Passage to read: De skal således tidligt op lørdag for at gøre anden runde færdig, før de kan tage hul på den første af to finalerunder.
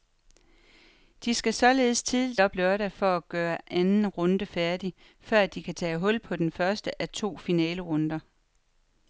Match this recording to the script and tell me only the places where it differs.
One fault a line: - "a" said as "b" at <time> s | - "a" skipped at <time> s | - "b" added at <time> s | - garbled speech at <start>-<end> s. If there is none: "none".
none